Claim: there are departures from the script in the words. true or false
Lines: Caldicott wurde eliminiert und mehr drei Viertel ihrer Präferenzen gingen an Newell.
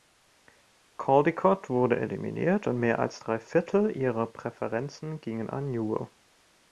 true